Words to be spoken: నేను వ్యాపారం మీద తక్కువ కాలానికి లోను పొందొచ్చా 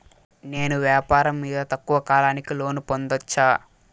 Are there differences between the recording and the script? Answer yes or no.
no